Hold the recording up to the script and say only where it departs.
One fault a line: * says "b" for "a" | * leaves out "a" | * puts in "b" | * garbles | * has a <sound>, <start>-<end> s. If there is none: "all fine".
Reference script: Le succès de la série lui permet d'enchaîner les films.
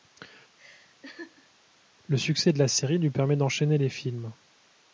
* has a laugh, 0.6-1.5 s